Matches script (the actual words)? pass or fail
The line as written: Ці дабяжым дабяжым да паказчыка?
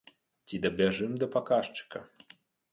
fail